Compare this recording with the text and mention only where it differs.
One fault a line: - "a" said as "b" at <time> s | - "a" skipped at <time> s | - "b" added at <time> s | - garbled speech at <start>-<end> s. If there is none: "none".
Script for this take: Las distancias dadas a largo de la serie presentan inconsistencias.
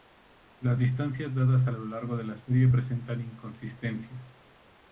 - "lo" added at 1.7 s